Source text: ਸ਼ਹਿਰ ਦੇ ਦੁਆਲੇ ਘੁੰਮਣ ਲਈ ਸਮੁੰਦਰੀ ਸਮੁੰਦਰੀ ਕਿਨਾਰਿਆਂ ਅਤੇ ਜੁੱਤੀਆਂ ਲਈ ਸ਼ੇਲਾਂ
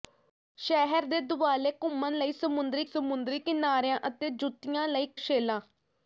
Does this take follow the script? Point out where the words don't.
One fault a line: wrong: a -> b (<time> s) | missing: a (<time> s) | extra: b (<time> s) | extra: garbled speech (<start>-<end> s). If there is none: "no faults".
no faults